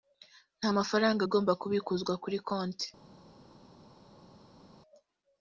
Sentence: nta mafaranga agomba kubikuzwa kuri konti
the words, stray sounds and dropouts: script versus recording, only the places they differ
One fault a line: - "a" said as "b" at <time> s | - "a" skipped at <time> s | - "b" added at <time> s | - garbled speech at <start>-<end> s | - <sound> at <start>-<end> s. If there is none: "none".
none